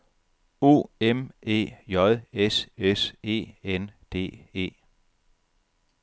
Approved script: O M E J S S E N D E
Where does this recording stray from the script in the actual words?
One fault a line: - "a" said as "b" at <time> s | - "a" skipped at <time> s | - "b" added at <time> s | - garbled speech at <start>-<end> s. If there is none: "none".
none